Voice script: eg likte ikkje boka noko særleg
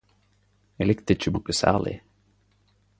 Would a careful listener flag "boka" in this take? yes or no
yes